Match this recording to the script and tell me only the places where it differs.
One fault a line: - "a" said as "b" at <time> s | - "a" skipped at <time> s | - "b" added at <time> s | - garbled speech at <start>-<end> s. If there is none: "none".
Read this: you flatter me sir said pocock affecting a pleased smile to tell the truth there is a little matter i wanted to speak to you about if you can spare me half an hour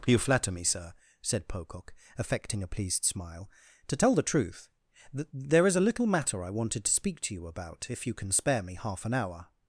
- "th" added at 5.1 s